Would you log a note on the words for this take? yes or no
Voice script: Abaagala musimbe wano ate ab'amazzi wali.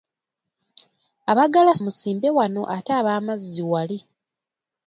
no